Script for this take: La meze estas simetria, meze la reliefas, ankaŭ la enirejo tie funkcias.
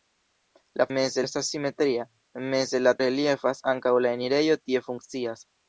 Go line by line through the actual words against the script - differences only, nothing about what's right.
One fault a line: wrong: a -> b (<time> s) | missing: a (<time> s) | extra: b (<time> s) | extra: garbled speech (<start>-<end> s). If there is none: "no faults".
no faults